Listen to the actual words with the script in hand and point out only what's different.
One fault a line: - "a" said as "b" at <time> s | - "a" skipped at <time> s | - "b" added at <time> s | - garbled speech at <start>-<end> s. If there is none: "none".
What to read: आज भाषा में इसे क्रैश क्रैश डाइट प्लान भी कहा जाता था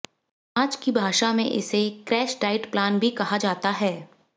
- "की" added at 0.8 s
- "क्रैश" skipped at 2.4 s
- "था" said as "है" at 3.7 s